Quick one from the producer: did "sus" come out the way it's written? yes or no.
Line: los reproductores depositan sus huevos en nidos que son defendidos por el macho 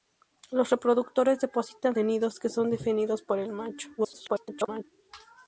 no